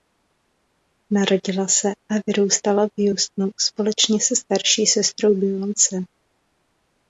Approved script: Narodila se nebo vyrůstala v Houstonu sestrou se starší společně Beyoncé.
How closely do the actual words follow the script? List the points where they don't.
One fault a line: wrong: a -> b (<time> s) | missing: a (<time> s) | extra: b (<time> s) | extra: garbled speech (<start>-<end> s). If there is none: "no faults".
wrong: nebo -> a (1.9 s)
wrong: sestrou -> společně (3.6 s)
wrong: společně -> sestrou (4.9 s)